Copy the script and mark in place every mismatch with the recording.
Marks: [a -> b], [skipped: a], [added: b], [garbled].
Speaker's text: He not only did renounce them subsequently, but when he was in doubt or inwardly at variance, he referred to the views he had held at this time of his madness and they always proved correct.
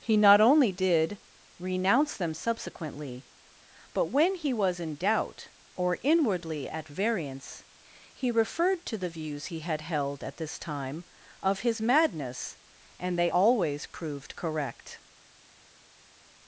He not only did renounce them subsequently, but when he was in doubt or inwardly at variance, he referred to the views he had held at this time of his madness and they always proved correct.